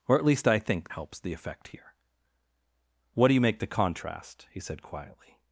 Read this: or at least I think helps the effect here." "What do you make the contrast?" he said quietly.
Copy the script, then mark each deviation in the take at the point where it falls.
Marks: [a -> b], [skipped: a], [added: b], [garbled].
or at least I think helps the effect here." "What do you make the contrast?" he said quietly.